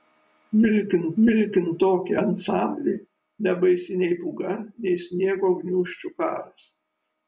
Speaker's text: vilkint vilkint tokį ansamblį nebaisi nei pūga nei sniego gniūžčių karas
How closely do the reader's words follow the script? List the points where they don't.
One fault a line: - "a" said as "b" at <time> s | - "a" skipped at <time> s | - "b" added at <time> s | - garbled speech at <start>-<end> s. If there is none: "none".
none